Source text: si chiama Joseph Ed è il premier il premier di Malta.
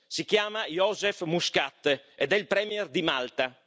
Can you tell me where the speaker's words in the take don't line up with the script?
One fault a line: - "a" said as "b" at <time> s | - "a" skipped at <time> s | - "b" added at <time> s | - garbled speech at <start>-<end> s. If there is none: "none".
- "Muscat" added at 1.2 s
- "il premier" skipped at 2.9 s